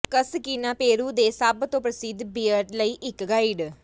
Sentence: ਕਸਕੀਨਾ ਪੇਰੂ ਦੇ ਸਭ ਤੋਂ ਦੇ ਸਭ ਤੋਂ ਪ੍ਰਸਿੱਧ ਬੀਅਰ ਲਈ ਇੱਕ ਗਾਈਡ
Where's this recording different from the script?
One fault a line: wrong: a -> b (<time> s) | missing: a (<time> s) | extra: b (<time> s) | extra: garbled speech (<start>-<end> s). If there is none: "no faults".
missing: ਦੇ ਸਭ ਤੋਂ (1.8 s)